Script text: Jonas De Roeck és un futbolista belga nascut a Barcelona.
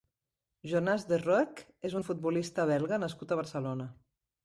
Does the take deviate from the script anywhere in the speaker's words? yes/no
no